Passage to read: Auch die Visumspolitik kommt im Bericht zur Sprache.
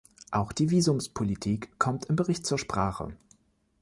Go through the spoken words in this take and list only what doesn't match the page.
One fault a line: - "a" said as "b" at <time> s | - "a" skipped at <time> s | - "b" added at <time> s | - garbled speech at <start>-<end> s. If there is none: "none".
none